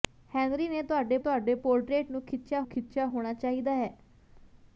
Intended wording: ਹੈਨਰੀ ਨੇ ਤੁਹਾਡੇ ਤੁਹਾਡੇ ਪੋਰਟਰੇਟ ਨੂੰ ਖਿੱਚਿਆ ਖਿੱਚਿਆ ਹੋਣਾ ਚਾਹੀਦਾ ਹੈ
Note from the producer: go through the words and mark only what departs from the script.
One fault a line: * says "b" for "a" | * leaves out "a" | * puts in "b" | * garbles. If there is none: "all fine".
all fine